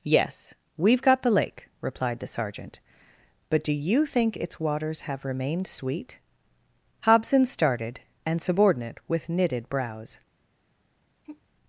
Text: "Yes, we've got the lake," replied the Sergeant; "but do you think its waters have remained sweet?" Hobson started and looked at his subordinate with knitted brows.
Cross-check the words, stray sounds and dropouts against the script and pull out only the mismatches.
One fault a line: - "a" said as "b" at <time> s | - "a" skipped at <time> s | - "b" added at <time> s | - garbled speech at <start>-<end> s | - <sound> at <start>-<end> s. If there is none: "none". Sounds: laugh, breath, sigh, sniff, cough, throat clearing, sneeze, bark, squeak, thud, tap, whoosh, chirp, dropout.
- "looked at his" skipped at 8.4 s
- sigh at 11.2-11.4 s